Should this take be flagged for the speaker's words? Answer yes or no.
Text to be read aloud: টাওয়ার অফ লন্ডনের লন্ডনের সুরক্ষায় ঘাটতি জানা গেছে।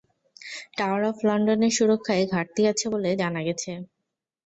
yes